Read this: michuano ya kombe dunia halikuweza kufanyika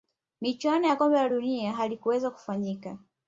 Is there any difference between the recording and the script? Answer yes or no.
yes